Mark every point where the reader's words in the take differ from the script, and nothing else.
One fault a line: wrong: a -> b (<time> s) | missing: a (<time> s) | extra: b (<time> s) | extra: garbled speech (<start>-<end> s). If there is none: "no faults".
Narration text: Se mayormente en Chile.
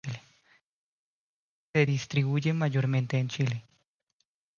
extra: distribuye (1.8 s)